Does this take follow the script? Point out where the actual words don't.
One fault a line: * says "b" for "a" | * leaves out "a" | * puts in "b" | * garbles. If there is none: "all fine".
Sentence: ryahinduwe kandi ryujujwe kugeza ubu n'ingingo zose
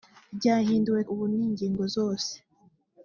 * leaves out "kandi ryujujwe kugeza"